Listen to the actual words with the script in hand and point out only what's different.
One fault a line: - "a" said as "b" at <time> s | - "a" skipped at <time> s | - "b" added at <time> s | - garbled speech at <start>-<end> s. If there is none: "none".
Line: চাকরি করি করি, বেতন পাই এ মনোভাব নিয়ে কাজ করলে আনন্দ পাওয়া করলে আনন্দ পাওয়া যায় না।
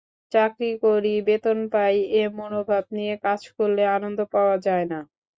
- "করি" skipped at 1.1 s
- "করলে আনন্দ পাওয়া" skipped at 4.5 s